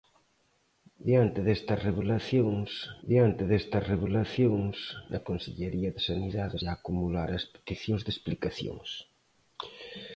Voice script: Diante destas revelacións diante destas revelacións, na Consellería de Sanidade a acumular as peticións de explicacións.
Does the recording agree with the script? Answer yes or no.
yes